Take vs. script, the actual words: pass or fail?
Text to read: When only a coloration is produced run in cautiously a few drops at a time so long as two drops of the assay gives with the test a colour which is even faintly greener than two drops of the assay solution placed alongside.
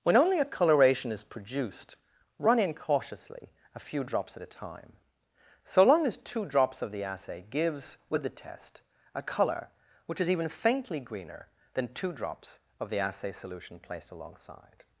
pass